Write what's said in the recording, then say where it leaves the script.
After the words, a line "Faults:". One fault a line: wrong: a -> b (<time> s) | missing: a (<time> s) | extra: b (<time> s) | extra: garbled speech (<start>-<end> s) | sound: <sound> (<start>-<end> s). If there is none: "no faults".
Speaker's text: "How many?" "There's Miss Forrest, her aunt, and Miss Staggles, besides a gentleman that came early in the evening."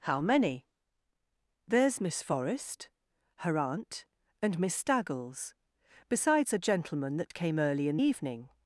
"How many?" "There's Miss Forrest, her aunt, and Miss Staggles, besides a gentleman that came early in evening."
Faults:
sound: dropout (7.3-7.3 s)
missing: the (8.0 s)